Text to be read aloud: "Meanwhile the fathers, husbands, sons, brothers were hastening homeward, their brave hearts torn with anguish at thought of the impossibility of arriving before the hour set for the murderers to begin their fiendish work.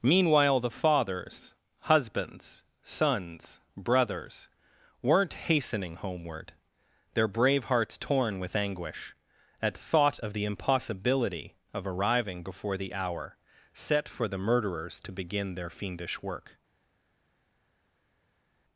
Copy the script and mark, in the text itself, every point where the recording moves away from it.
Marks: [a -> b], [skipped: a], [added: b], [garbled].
"Meanwhile the fathers, husbands, sons, brothers [were -> weren't] hastening homeward, their brave hearts torn with anguish at thought of the impossibility of arriving before the hour set for the murderers to begin their fiendish work.